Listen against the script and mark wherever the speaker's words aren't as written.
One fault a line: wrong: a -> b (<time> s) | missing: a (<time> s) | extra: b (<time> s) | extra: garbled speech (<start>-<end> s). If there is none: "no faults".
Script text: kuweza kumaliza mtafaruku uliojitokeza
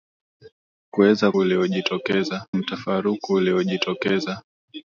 wrong: kumaliza -> uliojitokeza (1.4 s)